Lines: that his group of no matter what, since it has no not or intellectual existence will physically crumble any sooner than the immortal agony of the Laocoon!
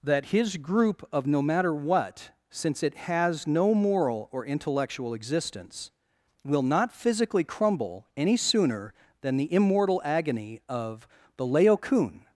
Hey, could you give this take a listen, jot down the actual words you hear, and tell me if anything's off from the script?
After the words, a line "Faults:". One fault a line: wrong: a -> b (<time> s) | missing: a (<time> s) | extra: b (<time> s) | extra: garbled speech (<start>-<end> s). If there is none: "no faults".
that his group of no matter what, since it has no moral or intellectual existence will not physically crumble any sooner than the immortal agony of the Laocoon!
Faults:
wrong: not -> moral (3.7 s)
extra: not (6.6 s)